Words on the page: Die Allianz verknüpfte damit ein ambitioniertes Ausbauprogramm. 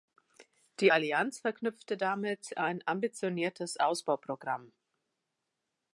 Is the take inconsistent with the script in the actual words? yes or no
no